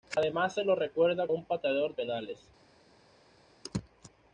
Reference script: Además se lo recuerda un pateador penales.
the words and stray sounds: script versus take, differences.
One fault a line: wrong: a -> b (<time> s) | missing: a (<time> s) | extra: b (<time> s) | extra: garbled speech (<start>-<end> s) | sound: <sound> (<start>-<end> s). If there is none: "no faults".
no faults